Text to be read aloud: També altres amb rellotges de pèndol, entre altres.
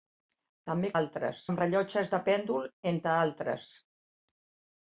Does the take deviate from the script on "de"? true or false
false